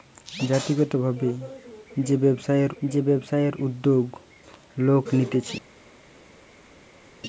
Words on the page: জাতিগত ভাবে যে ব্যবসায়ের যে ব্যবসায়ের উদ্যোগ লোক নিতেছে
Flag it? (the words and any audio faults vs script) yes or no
no